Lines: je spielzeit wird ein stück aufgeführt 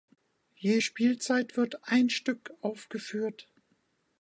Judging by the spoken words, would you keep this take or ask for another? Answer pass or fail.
pass